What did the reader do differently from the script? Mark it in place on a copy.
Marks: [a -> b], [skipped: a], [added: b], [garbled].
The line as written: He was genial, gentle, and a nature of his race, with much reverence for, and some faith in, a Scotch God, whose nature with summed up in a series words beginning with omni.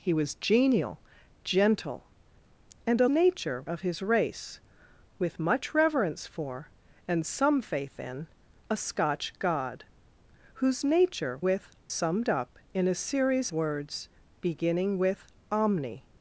He was genial, gentle, and a nature of his race, with much reverence for, and some faith in, a Scotch God, whose nature with summed up in a series words beginning with omni.